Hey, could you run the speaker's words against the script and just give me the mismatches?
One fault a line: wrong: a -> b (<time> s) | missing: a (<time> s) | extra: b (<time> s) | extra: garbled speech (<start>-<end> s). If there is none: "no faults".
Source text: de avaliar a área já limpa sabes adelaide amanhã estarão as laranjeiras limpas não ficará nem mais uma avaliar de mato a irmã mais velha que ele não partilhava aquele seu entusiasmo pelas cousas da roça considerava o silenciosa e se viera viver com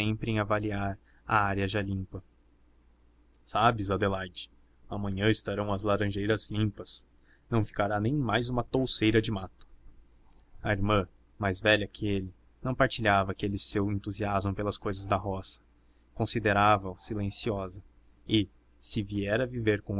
wrong: de -> em (0.0 s)
wrong: avaliar -> touceira (8.6 s)